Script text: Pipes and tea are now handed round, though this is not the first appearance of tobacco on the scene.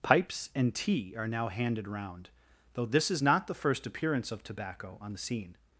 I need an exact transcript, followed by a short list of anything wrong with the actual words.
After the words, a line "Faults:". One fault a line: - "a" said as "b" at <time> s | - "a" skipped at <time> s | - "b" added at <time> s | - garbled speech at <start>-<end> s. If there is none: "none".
Pipes and tea are now handed round, though this is not the first appearance of tobacco on the scene.
Faults:
none